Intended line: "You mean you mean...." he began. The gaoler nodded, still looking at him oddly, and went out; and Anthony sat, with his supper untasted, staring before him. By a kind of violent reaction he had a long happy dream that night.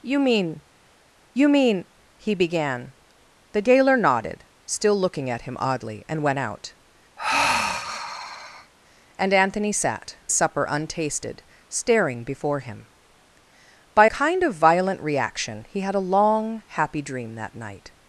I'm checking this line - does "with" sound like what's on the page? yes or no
no